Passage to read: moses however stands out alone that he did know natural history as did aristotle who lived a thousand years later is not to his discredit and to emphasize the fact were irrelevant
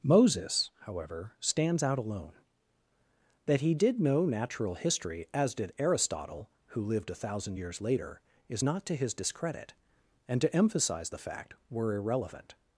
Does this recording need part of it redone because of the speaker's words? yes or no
no